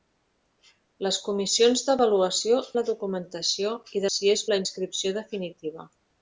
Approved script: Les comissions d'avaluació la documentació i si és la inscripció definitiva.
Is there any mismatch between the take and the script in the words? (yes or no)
no